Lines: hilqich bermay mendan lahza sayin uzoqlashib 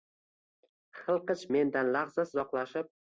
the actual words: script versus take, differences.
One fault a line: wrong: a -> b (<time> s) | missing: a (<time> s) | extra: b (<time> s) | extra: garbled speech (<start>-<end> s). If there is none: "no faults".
missing: bermay (1.4 s)
missing: sayin (2.3 s)